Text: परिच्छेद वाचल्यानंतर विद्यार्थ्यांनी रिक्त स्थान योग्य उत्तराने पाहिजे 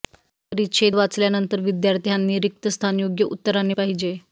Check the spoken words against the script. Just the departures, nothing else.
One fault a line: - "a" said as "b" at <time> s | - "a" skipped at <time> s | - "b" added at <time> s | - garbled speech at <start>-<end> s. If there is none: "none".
none